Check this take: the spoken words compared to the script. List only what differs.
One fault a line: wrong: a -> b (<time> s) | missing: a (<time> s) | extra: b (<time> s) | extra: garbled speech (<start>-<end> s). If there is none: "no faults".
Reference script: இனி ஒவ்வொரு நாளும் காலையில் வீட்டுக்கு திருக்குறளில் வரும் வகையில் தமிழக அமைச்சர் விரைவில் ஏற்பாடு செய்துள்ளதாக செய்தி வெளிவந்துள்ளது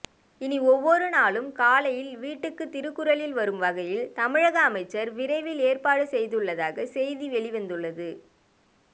no faults